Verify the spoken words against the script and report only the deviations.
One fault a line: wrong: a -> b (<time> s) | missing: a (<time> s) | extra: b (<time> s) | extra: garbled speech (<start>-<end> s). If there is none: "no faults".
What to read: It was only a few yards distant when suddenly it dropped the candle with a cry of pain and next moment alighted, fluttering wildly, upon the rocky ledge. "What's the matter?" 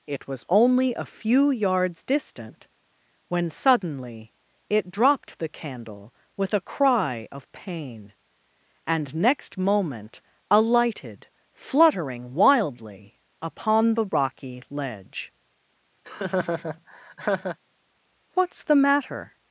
no faults